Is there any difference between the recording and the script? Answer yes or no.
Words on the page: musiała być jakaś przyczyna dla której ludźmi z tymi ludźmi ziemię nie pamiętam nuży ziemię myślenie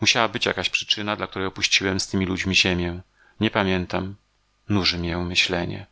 yes